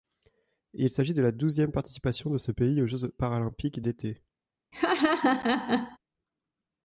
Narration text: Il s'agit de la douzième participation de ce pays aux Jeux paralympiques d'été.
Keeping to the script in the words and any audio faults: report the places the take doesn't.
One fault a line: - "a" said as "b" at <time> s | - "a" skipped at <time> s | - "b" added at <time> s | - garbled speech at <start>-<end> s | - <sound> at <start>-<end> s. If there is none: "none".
- laugh at 4.7-6.0 s